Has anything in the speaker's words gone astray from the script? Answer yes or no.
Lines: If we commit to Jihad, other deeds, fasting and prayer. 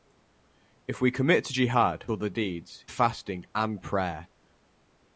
no